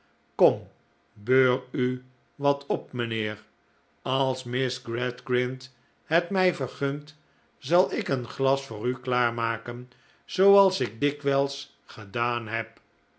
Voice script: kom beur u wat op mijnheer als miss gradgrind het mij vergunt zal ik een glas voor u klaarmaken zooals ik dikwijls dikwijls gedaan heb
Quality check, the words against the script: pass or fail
fail